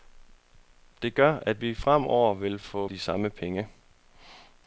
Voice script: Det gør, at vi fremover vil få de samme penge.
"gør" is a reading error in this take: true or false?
false